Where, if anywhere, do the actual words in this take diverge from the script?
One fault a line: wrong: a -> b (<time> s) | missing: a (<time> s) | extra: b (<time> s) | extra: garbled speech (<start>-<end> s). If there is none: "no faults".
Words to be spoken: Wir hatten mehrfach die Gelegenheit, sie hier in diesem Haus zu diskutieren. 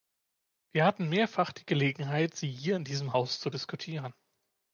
no faults